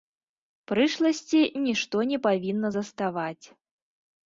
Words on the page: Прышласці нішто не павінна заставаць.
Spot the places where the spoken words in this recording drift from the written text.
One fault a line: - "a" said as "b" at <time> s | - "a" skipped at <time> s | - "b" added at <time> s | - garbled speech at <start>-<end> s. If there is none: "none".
none